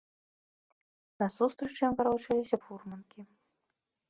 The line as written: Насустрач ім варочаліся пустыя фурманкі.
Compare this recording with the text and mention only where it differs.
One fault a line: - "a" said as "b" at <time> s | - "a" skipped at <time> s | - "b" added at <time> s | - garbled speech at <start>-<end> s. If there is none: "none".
- "пустыя" skipped at 2.6 s